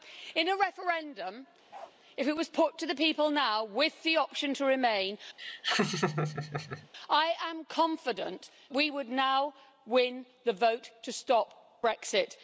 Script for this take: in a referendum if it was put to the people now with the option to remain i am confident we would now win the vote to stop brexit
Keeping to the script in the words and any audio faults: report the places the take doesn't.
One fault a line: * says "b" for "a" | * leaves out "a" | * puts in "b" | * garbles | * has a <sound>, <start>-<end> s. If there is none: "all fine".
* has a bark, 1.7-2.0 s
* has a laugh, 5.4-6.9 s